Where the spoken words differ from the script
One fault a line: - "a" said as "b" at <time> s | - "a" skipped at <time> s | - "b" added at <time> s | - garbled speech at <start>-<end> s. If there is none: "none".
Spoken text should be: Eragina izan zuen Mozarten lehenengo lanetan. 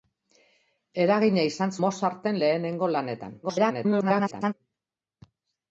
- "zuen" skipped at 1.8 s
- garbled speech at 3.4-4.5 s